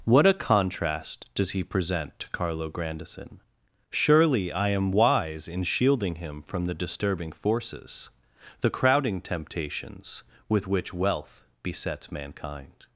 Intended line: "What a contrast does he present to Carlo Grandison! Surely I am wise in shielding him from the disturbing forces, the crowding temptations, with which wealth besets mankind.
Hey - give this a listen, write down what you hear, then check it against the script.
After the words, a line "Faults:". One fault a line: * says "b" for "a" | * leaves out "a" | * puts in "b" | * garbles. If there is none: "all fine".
"What a contrast does he present to Carlo Grandison! Surely I am wise in shielding him from the disturbing forces, the crowding temptations, with which wealth besets mankind.
Faults:
all fine